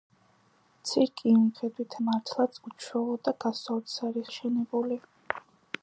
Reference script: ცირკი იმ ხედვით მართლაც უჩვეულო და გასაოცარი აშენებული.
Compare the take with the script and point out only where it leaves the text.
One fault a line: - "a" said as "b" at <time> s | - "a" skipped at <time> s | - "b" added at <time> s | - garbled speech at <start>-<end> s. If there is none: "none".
none